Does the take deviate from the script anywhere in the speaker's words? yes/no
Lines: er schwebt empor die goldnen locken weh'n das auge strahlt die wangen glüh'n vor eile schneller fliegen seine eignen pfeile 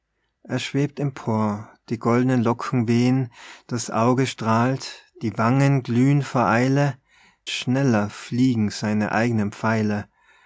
no